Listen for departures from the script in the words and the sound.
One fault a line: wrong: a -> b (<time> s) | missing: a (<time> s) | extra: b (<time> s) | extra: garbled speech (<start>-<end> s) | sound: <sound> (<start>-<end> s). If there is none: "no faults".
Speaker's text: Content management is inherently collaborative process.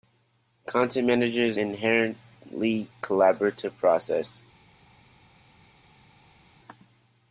no faults